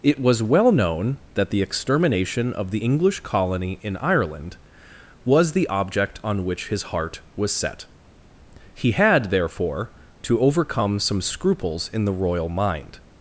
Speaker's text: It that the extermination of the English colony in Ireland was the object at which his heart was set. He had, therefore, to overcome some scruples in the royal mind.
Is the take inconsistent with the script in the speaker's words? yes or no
yes